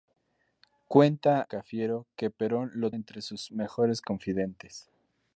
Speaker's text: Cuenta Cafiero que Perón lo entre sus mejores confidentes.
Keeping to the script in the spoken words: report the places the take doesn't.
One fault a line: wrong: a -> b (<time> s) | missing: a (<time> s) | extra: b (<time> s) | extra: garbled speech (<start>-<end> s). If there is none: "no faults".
no faults